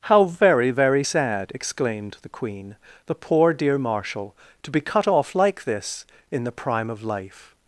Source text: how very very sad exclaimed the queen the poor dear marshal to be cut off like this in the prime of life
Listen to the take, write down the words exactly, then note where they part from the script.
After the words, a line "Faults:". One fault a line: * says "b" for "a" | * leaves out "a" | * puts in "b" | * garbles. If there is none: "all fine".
how very very sad exclaimed the queen the poor dear marshal to be cut off like this in the prime of life
Faults:
all fine